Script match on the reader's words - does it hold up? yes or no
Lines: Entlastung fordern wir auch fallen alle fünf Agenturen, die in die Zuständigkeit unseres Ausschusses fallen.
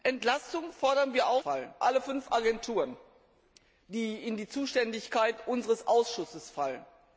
yes